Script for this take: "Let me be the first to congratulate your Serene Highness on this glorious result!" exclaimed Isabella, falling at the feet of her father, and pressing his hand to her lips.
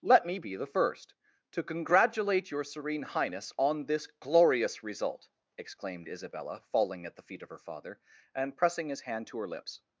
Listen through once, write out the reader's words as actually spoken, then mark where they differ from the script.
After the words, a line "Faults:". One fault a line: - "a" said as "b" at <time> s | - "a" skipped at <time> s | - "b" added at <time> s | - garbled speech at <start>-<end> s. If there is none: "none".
"Let me be the first to congratulate your Serene Highness on this glorious result!" exclaimed Isabella, falling at the feet of her father, and pressing his hand to her lips.
Faults:
none